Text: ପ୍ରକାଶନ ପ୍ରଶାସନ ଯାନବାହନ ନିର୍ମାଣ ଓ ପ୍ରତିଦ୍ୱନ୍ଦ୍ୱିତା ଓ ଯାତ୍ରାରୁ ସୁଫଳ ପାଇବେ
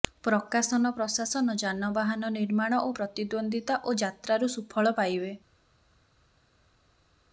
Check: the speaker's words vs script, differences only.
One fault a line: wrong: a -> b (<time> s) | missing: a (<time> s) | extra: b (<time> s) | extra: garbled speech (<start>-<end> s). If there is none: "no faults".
no faults